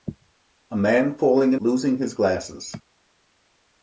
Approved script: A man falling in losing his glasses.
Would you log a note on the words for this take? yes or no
no